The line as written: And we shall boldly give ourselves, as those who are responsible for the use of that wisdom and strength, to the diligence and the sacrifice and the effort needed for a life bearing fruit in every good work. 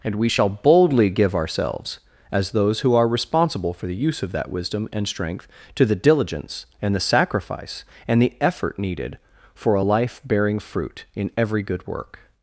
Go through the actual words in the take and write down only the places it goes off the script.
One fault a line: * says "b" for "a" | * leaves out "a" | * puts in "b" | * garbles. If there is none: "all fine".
all fine